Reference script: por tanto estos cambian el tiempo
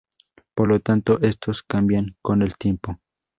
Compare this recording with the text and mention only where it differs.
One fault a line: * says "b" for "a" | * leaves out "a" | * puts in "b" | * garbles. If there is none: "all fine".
* puts in "lo"
* puts in "con"